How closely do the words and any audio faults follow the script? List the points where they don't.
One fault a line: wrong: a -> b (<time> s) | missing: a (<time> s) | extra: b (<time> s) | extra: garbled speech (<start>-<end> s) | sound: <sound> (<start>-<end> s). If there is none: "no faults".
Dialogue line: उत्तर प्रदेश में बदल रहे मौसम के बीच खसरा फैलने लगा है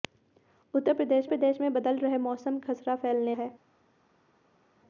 extra: प्रदेश (1.3 s)
missing: के बीच (2.6 s)
missing: लगा (3.3 s)